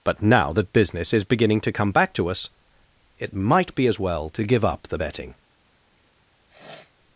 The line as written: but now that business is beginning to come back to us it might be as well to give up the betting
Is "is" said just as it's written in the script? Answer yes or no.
yes